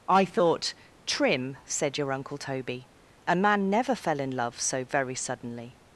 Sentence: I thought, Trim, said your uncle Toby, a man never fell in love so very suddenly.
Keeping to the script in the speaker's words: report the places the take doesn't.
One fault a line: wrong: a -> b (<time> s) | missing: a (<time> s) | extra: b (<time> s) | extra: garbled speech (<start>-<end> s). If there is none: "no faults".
no faults